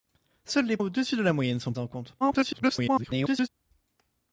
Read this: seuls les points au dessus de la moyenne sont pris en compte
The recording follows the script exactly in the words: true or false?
false